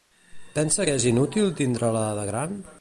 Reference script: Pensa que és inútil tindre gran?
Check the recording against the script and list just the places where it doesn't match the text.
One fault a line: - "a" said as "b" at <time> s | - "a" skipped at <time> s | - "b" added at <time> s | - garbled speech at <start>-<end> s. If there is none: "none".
- "la de" added at 1.9 s